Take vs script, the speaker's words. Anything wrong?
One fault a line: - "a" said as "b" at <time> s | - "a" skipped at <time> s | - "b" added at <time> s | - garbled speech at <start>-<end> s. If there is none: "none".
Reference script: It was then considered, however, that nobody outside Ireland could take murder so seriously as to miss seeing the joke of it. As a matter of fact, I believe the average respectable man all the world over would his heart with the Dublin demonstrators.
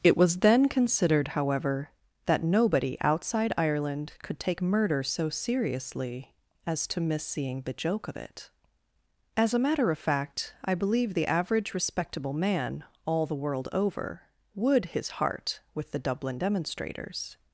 none